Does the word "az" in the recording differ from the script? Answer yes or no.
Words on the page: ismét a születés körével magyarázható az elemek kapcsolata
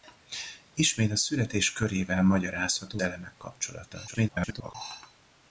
yes